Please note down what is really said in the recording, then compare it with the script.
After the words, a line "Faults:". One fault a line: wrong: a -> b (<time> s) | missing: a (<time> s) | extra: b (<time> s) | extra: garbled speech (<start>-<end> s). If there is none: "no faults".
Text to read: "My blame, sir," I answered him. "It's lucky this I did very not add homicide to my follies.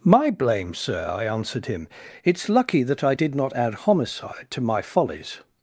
"My blame, sir," I answered him. "It's lucky that I did not add homicide to my follies.
Faults:
wrong: this -> that (2.8 s)
missing: very (3.3 s)